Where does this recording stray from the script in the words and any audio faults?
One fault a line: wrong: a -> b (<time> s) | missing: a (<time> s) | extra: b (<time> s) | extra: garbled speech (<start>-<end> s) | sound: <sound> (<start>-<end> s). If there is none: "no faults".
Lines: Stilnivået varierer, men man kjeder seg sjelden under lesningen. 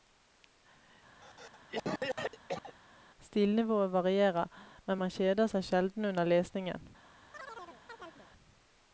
sound: cough (1.2-2.8 s)
sound: chirp (7.3-8.3 s)